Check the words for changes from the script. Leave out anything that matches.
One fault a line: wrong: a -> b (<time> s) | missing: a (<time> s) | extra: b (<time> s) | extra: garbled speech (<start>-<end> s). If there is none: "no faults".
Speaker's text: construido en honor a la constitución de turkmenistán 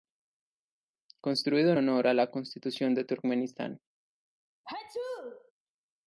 no faults